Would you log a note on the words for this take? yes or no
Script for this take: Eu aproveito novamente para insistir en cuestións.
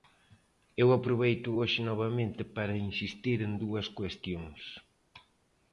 yes